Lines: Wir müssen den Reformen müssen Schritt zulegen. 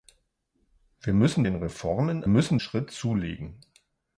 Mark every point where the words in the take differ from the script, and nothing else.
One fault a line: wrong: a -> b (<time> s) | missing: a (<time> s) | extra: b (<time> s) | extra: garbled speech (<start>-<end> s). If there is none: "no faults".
no faults